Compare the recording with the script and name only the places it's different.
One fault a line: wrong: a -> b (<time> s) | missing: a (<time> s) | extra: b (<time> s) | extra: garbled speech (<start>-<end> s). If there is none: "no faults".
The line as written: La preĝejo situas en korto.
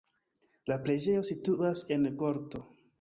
no faults